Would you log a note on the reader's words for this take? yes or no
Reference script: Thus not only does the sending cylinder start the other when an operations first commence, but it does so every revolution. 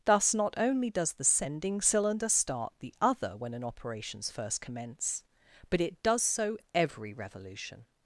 no